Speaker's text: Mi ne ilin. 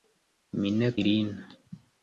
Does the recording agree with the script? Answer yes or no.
yes